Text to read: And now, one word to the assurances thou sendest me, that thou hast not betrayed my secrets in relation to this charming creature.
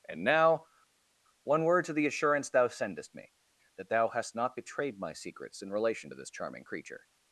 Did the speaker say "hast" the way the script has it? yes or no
yes